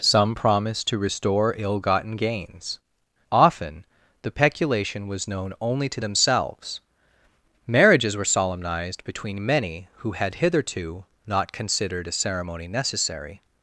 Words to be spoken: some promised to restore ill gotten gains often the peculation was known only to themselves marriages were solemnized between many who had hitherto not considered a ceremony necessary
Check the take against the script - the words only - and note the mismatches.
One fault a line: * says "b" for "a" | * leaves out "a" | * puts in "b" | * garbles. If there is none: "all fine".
all fine